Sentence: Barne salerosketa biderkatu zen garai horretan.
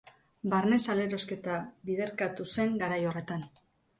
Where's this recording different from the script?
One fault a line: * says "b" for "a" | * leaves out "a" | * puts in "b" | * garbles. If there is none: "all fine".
all fine